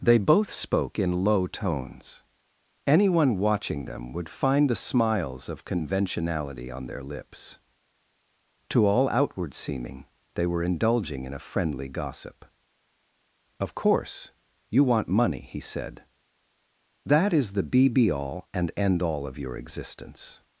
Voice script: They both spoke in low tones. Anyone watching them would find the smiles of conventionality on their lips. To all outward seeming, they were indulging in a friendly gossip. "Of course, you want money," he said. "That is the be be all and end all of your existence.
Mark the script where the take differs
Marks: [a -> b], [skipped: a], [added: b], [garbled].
They both spoke in low tones. Anyone watching them would find the smiles of conventionality on their lips. To all outward seeming, they were indulging in a friendly gossip. "Of course, you want money," he said. "That is the be be all and end all of your existence.